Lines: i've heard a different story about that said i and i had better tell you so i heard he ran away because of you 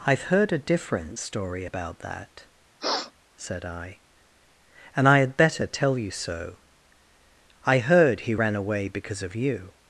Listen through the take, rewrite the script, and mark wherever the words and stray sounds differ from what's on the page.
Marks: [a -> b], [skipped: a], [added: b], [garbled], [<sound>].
i've heard a different story about that [sniff] said i and i had better tell you so i heard he ran away because of you